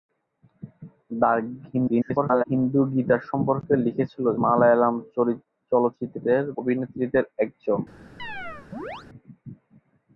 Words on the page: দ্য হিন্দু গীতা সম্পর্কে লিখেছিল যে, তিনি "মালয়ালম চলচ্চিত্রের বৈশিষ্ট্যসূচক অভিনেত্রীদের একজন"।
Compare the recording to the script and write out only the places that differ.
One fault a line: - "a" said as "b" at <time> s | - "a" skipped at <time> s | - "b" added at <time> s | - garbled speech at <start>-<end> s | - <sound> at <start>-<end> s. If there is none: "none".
- garbled speech at 1.7-2.4 s
- "যে তিনি" skipped at 4.3 s
- "বৈশিষ্ট্যসূচক" skipped at 6.4 s
- chirp at 8.2-9.1 s